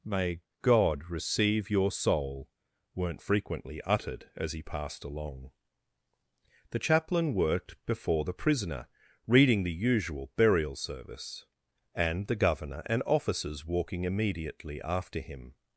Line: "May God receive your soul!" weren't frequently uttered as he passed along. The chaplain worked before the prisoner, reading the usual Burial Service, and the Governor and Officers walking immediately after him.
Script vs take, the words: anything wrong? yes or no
no